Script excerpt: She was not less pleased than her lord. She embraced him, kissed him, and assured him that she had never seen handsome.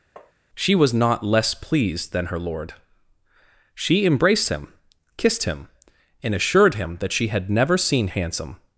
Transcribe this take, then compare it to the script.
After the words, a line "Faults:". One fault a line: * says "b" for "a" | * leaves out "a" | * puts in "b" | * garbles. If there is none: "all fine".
She was not less pleased than her lord. She embraced him, kissed him, and assured him that she had never seen handsome.
Faults:
all fine